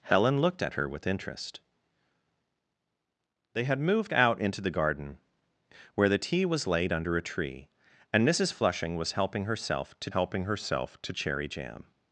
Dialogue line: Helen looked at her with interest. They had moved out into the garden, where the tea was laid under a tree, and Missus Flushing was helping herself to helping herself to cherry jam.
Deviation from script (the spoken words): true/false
false